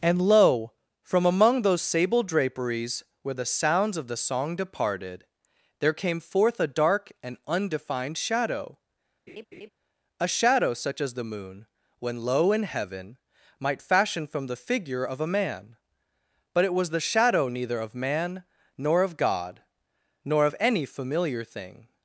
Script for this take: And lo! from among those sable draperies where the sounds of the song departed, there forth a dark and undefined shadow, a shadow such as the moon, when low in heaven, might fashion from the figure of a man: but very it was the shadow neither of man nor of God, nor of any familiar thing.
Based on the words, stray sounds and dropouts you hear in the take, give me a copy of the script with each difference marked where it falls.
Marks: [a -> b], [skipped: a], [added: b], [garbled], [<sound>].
And lo! from among those sable draperies where the sounds of the song departed, there [added: came] forth a dark and undefined shadow, [laugh] a shadow such as the moon, when low in heaven, might fashion from the figure of a man: but [skipped: very] it was the shadow neither of man nor of God, nor of any familiar thing.